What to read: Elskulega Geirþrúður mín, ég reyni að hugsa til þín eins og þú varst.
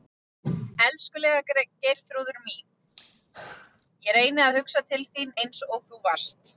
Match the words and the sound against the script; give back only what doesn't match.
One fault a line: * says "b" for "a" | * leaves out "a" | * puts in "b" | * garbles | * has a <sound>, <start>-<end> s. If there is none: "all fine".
* has a throat clearing, 2.9-3.9 s